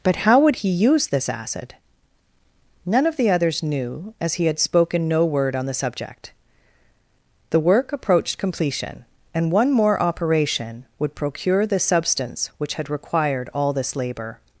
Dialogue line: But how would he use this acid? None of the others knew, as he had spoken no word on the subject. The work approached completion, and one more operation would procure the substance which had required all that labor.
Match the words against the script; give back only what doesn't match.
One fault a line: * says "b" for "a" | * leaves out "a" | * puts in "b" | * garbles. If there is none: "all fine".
* says "this" for "that"